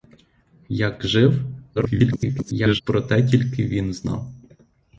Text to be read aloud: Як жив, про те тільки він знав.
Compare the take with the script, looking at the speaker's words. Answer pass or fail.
fail